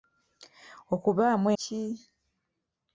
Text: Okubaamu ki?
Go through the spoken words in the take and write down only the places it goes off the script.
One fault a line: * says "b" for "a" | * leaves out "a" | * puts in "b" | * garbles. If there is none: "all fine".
all fine